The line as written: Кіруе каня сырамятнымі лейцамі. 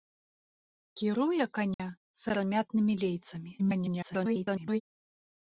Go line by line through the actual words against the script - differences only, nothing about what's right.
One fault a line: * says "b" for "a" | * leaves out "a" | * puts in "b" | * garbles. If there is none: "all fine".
* garbles